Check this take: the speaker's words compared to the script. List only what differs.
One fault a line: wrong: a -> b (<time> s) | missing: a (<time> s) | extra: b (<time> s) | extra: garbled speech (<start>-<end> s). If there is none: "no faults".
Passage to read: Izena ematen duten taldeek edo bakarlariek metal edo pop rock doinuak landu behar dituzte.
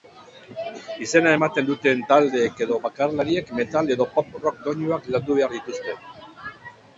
no faults